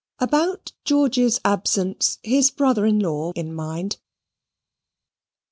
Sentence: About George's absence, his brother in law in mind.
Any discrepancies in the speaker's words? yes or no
no